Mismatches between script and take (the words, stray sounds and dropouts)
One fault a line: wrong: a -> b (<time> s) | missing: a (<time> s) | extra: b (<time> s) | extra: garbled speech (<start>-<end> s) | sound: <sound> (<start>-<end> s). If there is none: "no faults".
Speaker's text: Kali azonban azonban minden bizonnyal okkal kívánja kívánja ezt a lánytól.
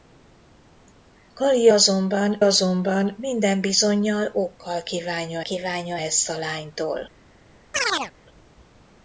sound: chirp (7.7-8.1 s)